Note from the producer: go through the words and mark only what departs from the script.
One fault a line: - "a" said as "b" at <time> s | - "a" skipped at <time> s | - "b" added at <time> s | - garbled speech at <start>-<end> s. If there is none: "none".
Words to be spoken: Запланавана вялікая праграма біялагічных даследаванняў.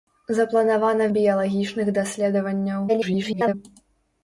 - "вялікая праграма" skipped at 1.1 s
- garbled speech at 2.9-3.5 s